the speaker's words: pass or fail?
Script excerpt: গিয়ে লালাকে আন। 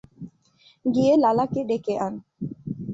fail